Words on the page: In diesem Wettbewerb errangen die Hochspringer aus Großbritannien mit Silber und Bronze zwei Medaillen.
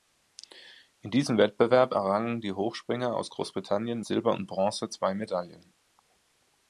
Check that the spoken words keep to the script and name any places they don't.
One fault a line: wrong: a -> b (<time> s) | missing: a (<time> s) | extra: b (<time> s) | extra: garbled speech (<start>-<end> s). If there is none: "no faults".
missing: mit (4.0 s)